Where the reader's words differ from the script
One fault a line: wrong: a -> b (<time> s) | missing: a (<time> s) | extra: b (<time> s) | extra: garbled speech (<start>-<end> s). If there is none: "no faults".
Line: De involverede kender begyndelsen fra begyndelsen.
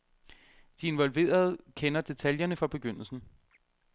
wrong: begyndelsen -> detaljerne (2.0 s)